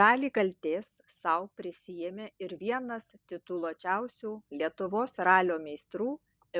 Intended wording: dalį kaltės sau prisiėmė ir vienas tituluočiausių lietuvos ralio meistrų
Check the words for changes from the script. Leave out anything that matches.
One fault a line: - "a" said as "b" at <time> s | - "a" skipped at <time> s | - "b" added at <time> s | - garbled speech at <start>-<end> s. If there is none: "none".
none